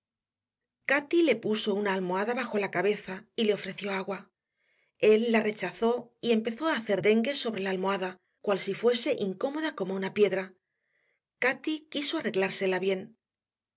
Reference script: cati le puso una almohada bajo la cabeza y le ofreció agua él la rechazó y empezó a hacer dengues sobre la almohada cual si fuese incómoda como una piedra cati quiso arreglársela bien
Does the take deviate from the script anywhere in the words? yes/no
no